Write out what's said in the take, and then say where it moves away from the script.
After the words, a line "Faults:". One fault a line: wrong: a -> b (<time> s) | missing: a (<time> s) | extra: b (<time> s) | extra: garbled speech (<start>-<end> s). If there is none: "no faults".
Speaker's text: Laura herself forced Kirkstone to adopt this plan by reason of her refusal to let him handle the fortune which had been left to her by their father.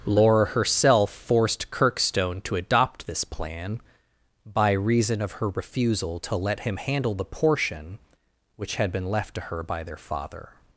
Laura herself forced Kirkstone to adopt this plan by reason of her refusal to let him handle the portion which had been left to her by their father.
Faults:
wrong: fortune -> portion (7.3 s)